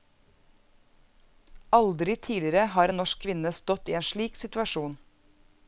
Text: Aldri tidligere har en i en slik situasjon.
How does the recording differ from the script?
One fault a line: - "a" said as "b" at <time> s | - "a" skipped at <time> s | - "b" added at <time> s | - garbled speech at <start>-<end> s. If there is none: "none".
- "norsk kvinne stått" added at 3.0 s